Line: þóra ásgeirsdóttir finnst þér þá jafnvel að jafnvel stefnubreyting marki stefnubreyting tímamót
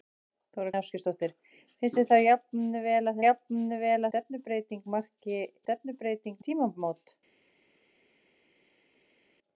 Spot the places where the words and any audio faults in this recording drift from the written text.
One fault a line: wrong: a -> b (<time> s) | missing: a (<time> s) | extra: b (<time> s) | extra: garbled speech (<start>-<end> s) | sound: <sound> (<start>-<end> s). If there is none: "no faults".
no faults